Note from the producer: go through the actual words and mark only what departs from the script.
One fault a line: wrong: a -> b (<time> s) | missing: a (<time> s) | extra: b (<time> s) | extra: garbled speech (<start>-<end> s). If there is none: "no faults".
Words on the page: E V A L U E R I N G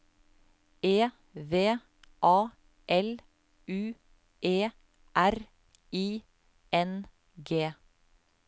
no faults